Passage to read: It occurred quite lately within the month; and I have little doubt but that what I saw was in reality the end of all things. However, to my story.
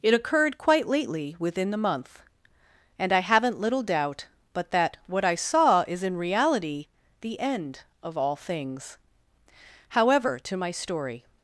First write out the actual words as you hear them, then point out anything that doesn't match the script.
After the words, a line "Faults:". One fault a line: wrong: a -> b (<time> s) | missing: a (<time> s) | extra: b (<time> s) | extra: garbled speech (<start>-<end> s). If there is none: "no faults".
It occurred quite lately within the month; and I haven't little doubt but that what I saw is in reality the end of all things. However, to my story.
Faults:
wrong: have -> haven't (3.2 s)
wrong: was -> is (5.9 s)